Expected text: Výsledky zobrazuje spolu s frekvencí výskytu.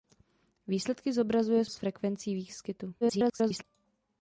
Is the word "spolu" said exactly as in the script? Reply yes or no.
no